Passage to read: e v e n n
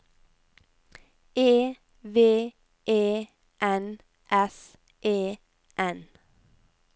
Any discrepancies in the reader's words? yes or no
yes